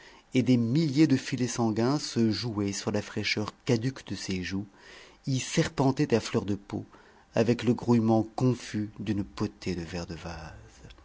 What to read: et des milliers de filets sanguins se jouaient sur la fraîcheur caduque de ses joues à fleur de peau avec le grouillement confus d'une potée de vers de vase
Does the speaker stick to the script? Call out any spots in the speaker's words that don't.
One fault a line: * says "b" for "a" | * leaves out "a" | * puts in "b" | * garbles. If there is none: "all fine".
* puts in "y serpentaient"